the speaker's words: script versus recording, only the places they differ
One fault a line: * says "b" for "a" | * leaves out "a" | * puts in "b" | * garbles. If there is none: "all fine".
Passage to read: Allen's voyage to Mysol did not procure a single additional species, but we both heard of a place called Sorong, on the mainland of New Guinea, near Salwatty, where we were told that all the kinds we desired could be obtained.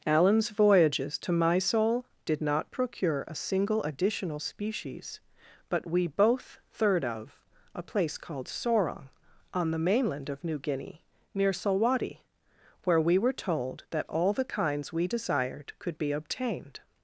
* says "voyages" for "voyage"
* says "third" for "heard"